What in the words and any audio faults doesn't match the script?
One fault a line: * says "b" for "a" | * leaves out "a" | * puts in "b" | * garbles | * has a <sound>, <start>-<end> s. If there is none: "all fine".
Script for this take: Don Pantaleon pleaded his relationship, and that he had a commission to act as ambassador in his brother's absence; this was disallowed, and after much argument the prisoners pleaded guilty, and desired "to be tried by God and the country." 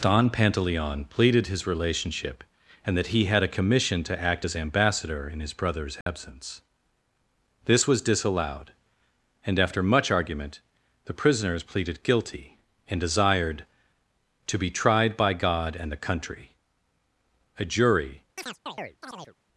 * has a dropout, 6.0-6.1 s
* puts in "A jury"
* has a chirp, 18.4-19.4 s